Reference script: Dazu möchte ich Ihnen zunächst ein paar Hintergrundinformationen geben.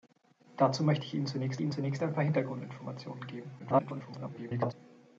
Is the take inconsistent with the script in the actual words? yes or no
yes